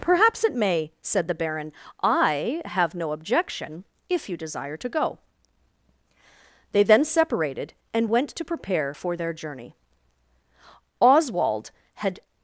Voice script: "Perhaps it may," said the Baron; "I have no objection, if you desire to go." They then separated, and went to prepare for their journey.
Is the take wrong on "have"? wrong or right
right